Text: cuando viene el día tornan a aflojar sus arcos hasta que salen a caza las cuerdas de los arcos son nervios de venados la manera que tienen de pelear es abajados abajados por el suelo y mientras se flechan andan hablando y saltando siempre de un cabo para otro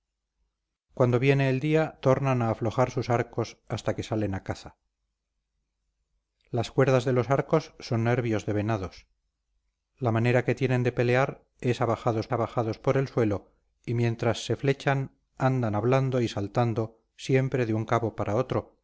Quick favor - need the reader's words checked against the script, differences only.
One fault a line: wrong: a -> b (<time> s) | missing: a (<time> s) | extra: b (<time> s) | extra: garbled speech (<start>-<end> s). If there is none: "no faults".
no faults